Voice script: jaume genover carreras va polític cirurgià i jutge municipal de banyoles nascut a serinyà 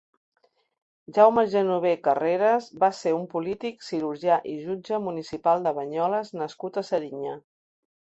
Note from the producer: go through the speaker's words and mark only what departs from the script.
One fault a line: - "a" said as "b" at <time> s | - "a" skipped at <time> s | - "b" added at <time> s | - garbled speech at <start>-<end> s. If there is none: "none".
- "ser un" added at 3.0 s